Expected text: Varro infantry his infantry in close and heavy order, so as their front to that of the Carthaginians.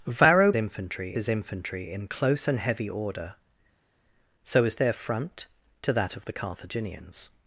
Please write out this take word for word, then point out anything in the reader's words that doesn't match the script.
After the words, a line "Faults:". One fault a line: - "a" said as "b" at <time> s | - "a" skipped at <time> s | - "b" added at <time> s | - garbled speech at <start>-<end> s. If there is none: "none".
Varro infantry his infantry in close and heavy order, so as their front to that of the Carthaginians.
Faults:
none